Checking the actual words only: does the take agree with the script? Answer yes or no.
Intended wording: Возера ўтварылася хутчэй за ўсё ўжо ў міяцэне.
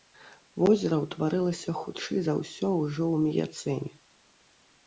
yes